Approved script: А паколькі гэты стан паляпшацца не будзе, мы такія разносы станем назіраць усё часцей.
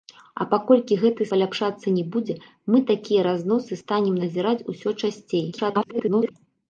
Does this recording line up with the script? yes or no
no